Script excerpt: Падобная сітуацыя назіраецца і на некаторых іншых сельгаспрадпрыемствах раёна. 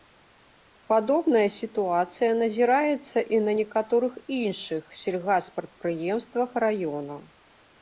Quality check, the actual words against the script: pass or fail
pass